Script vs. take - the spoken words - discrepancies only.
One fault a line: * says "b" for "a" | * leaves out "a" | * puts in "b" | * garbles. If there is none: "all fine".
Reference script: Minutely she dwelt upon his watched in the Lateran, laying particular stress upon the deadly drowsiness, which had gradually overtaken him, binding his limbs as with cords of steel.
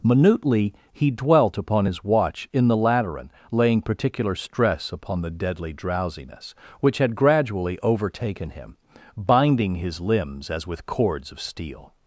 * says "he" for "she"
* says "watch" for "watched"